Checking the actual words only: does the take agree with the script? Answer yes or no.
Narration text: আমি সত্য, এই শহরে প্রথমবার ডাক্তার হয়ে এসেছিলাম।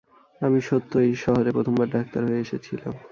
yes